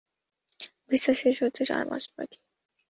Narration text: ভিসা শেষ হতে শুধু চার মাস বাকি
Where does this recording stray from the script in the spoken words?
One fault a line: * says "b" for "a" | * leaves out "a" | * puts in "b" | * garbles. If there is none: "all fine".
* leaves out "শুধু"